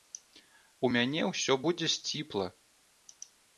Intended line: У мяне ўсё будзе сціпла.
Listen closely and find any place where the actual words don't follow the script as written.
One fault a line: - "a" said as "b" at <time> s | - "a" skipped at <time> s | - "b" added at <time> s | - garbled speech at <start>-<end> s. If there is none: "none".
none